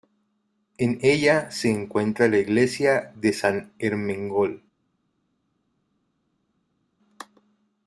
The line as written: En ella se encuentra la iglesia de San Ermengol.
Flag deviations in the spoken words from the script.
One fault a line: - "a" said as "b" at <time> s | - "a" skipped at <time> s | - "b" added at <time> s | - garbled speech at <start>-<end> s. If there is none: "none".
none